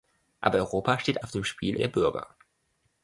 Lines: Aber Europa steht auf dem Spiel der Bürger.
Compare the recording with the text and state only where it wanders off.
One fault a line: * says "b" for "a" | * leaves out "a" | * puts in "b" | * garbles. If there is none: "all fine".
all fine